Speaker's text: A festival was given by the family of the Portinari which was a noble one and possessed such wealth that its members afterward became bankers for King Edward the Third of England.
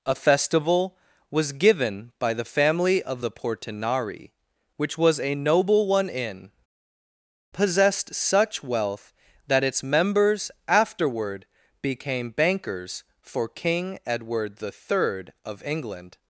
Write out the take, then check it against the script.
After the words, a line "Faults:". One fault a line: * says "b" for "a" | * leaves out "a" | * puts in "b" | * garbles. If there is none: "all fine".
A festival was given by the family of the Portinari which was a noble one in possessed such wealth that its members afterward became bankers for King Edward the Third of England.
Faults:
* says "in" for "and"